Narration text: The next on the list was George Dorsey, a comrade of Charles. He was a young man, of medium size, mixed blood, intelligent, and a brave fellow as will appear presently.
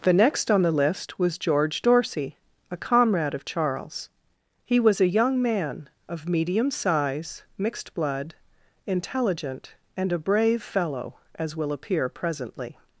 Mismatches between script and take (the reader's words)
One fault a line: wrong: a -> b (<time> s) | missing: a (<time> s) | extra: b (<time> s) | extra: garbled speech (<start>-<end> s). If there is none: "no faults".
no faults